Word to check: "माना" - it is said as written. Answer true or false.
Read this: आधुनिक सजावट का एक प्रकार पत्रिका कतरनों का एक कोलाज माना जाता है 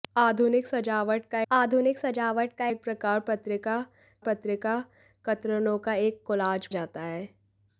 false